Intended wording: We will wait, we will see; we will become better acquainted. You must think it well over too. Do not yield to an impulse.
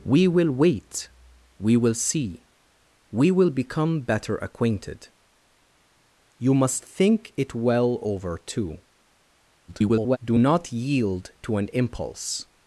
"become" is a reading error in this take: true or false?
false